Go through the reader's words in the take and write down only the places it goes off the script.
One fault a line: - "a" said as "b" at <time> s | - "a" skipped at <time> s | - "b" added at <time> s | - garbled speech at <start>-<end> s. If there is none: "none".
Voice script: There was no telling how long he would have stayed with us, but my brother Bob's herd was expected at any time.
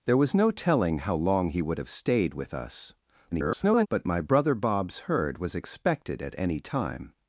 - garbled speech at 3.3-3.9 s